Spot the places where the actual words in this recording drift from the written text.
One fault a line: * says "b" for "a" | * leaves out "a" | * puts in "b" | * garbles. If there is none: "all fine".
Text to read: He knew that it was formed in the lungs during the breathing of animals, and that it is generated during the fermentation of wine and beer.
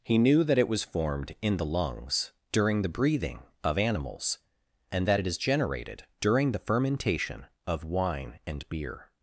all fine